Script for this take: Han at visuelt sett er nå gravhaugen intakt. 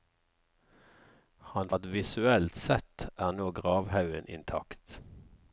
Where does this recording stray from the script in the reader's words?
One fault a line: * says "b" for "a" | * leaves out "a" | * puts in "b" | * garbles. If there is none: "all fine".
all fine